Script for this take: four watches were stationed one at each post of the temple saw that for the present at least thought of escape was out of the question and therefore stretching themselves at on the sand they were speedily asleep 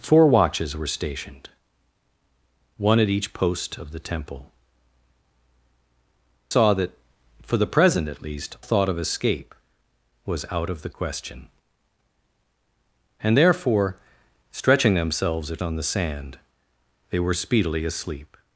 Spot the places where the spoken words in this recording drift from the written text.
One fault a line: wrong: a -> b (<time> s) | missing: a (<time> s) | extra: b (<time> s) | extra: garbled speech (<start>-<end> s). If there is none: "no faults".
no faults